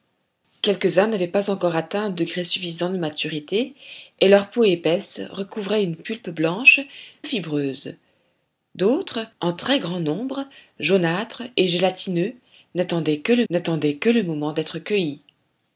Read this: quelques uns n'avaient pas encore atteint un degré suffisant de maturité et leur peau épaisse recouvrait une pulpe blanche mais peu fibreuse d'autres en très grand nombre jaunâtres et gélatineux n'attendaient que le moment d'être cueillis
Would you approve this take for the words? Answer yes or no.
no